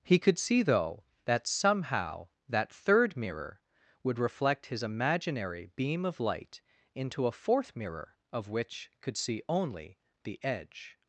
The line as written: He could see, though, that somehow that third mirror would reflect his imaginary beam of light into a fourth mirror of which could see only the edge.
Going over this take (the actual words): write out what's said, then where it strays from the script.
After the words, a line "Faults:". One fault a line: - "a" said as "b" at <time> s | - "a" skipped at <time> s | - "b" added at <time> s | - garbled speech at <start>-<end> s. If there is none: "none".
He could see, though, that somehow that third mirror would reflect his imaginary beam of light into a fourth mirror of which could see only the edge.
Faults:
none